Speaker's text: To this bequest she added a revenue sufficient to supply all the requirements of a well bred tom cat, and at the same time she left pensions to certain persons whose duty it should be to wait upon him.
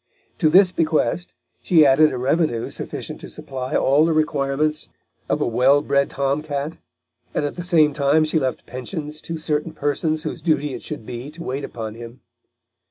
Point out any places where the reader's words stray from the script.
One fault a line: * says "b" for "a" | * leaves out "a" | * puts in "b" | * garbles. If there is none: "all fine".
all fine